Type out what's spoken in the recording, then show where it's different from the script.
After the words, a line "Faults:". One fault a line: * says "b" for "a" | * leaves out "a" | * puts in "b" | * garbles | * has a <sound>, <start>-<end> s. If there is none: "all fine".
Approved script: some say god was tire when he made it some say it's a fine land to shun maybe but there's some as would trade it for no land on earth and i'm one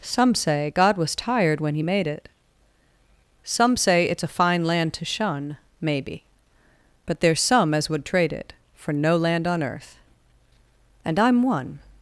some say god was tired when he made it some say it's a fine land to shun maybe but there's some as would trade it for no land on earth and i'm one
Faults:
* says "tired" for "tire"